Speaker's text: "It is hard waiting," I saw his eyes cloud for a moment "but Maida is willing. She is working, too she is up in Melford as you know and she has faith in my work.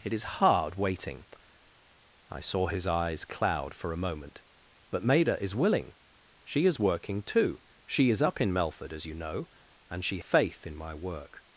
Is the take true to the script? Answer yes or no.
no